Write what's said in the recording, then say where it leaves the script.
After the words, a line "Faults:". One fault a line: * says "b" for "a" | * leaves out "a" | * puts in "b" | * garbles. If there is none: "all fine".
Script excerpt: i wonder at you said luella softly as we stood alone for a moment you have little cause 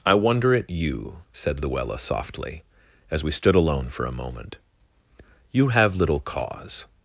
i wonder at you said luella softly as we stood alone for a moment you have little cause
Faults:
all fine